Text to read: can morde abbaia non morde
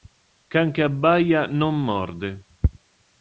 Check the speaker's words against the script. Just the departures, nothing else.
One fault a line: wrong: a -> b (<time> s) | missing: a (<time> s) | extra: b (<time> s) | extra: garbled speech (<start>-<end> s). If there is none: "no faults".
wrong: morde -> che (0.7 s)